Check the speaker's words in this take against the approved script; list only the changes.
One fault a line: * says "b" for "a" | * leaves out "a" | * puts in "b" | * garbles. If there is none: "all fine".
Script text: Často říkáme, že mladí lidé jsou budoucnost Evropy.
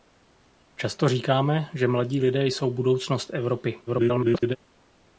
* garbles